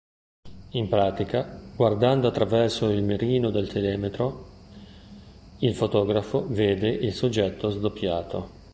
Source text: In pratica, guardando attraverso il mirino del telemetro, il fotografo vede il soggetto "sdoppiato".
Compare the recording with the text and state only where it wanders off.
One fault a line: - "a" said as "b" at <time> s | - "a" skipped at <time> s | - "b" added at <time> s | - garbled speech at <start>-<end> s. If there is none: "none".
none